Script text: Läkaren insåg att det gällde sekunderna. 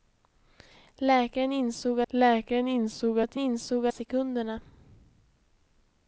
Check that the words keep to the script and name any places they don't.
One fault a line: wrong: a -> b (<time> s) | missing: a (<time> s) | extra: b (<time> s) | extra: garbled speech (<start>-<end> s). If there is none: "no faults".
extra: läkaren insåg (2.1 s)
wrong: gällde -> insåg (3.4 s)